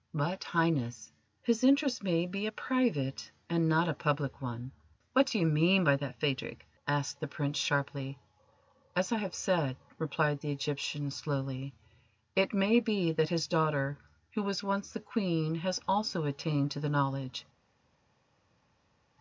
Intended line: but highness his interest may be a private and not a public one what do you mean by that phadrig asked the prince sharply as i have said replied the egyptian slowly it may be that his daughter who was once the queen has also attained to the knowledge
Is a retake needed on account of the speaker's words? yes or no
no